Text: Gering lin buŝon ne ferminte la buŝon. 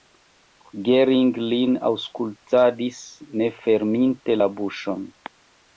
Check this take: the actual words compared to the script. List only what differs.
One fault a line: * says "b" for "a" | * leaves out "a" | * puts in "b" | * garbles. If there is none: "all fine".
* says "aŭskultadis" for "buŝon"